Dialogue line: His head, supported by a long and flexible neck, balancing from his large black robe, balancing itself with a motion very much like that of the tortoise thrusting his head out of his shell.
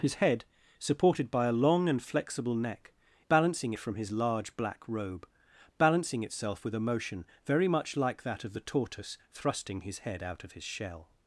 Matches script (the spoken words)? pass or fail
pass